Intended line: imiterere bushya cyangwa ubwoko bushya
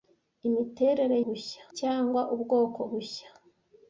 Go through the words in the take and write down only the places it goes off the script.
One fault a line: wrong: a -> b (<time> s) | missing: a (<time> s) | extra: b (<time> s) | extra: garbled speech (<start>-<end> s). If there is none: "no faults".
no faults